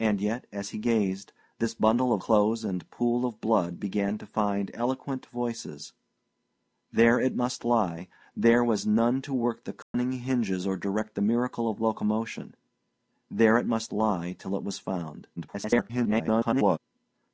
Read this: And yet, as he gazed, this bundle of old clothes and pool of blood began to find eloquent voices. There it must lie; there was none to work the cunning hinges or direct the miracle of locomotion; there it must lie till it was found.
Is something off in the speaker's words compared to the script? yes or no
yes